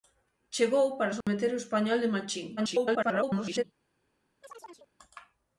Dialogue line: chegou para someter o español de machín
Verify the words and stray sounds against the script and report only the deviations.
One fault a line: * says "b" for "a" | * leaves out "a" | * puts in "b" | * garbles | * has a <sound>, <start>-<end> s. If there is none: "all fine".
* has a dropout, 1.2-1.3 s
* garbles
* has a chirp, 4.4-4.9 s